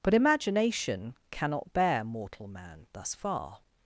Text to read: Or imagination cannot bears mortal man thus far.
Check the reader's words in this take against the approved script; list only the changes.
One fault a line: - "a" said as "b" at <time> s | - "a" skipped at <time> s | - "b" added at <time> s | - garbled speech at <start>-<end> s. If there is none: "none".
- "Or" said as "But" at 0.0 s
- "bears" said as "bear" at 1.7 s